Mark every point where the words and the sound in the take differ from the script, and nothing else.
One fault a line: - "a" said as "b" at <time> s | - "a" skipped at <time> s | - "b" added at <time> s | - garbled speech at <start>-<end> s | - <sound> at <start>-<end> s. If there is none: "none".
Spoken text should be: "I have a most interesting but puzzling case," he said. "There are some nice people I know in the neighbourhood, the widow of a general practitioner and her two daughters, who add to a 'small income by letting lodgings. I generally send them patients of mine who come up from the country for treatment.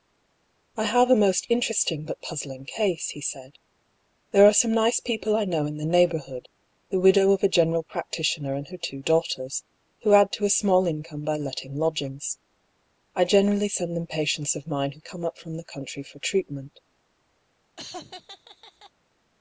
- laugh at 17.8-18.9 s